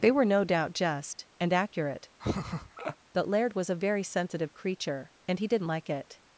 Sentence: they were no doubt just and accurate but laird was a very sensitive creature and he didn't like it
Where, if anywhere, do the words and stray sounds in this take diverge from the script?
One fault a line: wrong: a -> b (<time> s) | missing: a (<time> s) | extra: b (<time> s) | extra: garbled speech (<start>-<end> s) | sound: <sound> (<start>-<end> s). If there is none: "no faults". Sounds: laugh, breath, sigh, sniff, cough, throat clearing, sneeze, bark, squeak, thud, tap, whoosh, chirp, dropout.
sound: laugh (2.2-3.0 s)